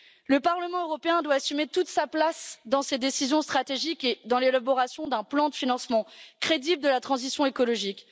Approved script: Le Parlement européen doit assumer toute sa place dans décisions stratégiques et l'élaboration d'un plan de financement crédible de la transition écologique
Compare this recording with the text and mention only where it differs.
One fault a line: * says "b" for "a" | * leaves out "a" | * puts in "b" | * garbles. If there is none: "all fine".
* puts in "ces"
* puts in "dans"